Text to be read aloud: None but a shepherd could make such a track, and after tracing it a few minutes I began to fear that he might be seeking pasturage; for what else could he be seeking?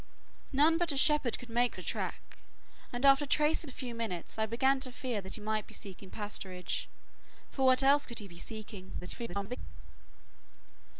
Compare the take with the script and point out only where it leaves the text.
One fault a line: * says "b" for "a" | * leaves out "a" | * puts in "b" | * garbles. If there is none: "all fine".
* leaves out "such"
* leaves out "it"
* garbles